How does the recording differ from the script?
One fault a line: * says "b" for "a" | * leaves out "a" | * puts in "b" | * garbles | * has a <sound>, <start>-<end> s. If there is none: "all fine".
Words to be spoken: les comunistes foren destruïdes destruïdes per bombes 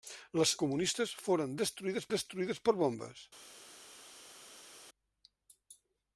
all fine